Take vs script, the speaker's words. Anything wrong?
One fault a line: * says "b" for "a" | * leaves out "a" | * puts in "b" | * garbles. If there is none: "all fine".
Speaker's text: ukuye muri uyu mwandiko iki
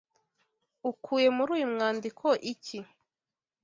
all fine